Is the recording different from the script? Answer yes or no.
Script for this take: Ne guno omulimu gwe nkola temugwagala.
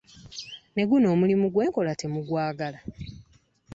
no